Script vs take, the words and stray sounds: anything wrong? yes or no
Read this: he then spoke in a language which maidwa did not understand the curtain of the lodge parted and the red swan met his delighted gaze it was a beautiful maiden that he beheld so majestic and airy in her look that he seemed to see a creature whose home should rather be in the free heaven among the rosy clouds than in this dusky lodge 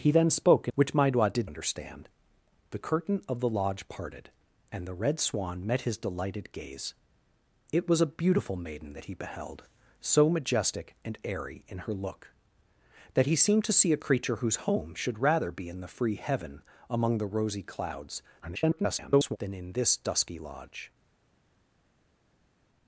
yes